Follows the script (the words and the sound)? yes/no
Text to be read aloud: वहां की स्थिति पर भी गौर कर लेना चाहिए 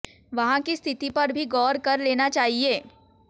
yes